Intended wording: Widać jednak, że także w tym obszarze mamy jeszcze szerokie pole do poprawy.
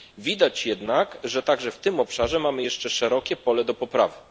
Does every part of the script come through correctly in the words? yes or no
yes